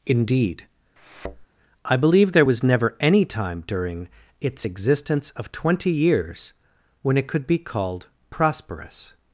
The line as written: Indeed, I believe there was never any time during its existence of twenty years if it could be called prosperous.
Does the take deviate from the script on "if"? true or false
true